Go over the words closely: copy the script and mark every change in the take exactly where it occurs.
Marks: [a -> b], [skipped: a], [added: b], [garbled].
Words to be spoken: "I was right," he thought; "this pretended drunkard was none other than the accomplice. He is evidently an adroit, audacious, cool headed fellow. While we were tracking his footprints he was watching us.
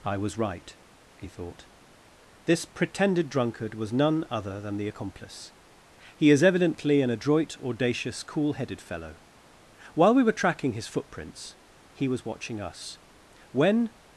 "I was right," he thought; "this pretended drunkard was none other than the accomplice. He is evidently an adroit, audacious, cool headed fellow. While we were tracking his footprints he was watching us. [added: When]